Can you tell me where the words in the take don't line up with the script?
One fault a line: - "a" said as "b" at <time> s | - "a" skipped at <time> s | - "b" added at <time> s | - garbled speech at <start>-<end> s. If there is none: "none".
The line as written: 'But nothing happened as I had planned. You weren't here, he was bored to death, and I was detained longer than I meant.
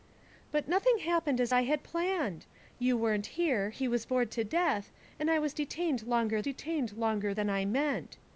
- "detained longer" added at 6.4 s